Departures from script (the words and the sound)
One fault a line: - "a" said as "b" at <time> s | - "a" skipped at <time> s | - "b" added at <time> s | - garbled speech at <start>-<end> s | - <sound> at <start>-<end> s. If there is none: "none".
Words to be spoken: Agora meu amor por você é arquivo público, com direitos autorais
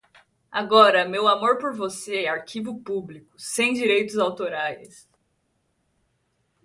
- "com" said as "sem" at 3.4 s